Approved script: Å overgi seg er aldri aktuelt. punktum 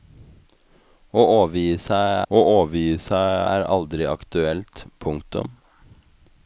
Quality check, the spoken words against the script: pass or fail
fail